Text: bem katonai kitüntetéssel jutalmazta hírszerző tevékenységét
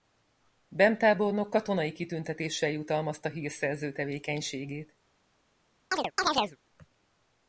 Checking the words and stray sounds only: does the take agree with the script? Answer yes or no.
no